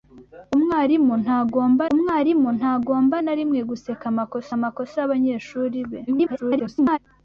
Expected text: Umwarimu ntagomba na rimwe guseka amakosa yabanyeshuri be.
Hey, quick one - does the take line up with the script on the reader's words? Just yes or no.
no